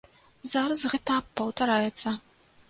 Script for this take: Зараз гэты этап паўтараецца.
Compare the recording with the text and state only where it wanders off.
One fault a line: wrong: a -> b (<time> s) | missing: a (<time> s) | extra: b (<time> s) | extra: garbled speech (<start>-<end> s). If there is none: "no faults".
missing: гэты (0.8 s)